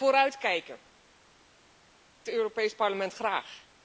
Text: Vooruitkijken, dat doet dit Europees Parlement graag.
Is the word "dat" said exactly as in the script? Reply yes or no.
no